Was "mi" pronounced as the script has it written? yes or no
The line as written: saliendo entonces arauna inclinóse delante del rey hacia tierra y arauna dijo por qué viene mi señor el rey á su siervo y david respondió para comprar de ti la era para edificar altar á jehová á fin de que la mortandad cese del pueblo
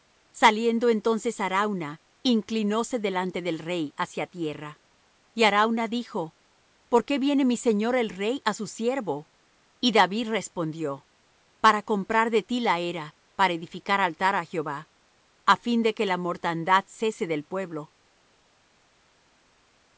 yes